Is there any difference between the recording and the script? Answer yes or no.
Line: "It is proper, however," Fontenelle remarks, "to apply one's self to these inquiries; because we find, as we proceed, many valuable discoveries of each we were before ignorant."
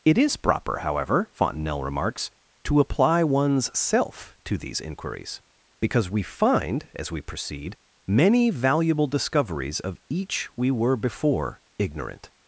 no